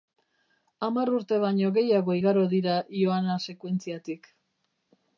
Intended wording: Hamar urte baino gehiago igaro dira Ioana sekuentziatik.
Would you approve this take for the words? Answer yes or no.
yes